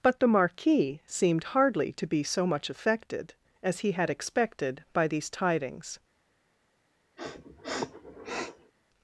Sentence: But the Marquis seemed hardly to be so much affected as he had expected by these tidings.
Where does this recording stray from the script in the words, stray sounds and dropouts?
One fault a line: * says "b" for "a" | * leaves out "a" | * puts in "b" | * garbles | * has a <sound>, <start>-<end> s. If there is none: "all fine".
* has a sniff, 7.2-8.7 s